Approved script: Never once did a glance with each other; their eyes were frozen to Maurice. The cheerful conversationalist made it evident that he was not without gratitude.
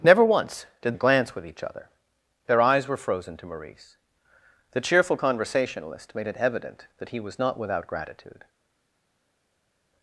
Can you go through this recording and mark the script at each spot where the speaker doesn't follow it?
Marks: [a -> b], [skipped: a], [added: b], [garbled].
Never once did a glance with each other; their eyes were frozen to Maurice. The cheerful conversationalist made it evident that he was not without gratitude.